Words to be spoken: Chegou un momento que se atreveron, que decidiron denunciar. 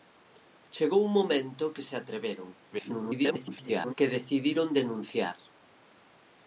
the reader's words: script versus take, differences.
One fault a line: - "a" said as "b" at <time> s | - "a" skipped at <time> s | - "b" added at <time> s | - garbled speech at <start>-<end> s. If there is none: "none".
- garbled speech at 2.7-3.9 s